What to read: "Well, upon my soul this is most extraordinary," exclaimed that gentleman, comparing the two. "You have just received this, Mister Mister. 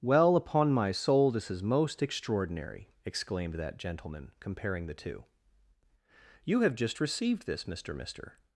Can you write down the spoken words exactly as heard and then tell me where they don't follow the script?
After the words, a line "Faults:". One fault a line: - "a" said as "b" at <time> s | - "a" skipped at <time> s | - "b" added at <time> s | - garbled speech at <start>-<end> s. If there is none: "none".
"Well, upon my soul this is most extraordinary," exclaimed that gentleman, comparing the two. "You have just received this, Mister Mister.
Faults:
none